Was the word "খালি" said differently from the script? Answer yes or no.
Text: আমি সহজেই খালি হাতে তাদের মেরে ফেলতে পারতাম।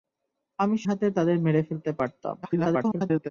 yes